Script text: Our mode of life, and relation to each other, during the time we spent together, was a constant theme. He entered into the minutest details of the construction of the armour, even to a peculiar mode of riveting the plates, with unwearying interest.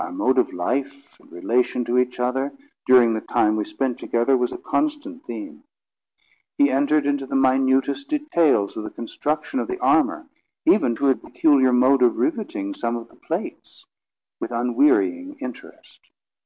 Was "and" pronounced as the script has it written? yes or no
yes